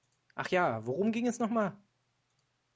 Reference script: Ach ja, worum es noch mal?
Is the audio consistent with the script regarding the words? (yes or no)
no